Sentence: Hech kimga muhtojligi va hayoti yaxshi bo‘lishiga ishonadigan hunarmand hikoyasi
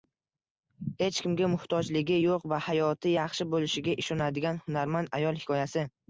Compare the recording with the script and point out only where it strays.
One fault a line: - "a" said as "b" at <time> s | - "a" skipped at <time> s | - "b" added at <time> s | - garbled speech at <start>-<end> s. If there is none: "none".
- "yo‘q" added at 2.2 s
- "ayol" added at 5.2 s